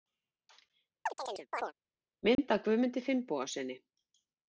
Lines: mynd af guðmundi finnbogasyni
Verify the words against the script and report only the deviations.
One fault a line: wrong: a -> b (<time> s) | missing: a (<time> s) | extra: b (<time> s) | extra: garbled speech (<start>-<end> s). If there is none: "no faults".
no faults